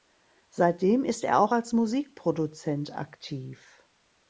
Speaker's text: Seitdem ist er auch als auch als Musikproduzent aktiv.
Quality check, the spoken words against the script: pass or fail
fail